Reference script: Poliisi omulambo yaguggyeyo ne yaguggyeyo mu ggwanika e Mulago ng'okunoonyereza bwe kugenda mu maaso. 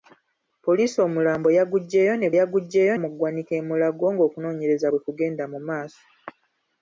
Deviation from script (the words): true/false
false